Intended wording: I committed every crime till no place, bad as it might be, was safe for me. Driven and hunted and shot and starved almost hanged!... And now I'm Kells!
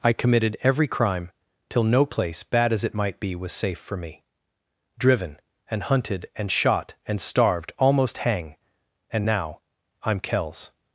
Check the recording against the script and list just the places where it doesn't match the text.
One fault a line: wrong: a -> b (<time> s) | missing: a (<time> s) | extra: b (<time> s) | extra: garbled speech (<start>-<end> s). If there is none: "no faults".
wrong: hanged -> hang (8.2 s)